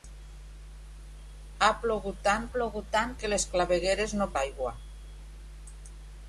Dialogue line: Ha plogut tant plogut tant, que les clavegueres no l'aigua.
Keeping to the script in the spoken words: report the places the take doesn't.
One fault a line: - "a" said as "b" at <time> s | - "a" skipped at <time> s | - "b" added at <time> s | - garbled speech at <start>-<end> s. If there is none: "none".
none